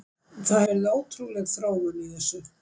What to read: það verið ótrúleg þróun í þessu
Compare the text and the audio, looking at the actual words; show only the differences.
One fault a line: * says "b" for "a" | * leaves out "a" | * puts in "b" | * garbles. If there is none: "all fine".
all fine